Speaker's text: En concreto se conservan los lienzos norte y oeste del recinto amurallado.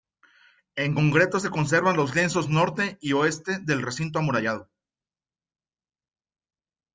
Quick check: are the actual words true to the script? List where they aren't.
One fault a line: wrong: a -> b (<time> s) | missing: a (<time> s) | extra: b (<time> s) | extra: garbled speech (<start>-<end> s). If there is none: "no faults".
no faults